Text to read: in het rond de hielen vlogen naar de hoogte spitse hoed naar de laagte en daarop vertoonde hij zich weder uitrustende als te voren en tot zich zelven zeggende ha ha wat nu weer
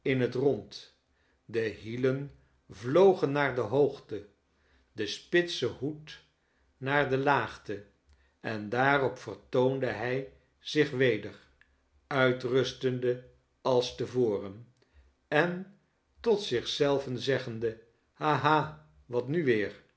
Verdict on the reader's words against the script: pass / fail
fail